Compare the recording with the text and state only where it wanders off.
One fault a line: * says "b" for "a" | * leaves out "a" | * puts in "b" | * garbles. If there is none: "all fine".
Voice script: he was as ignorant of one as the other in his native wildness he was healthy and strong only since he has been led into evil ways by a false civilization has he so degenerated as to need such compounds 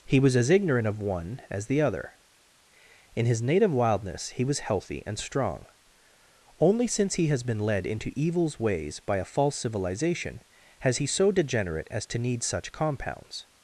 * says "evils" for "evil"
* says "degenerate" for "degenerated"